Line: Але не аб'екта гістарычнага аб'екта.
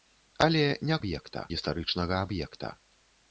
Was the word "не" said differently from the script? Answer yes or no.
no